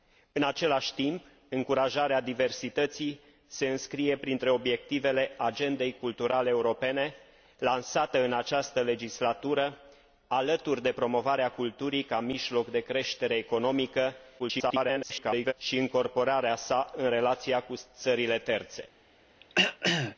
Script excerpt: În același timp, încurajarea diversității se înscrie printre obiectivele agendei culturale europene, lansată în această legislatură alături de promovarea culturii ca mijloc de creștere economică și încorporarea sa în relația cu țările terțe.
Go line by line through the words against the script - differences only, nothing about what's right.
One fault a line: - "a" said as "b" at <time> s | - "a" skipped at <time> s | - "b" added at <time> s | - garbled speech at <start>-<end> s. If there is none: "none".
- garbled speech at 14.4-15.5 s